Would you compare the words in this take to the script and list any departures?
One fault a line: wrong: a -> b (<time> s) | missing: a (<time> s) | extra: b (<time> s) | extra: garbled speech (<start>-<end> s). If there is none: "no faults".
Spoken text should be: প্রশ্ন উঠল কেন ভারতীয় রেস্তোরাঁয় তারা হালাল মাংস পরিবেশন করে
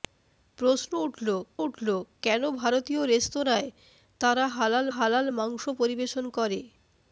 extra: উঠল (1.6 s)
extra: হালাল (4.9 s)